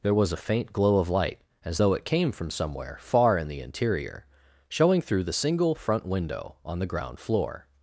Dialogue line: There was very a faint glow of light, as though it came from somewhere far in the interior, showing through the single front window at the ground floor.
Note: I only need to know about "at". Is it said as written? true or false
false